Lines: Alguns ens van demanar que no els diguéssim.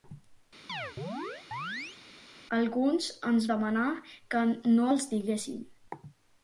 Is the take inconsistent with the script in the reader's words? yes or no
yes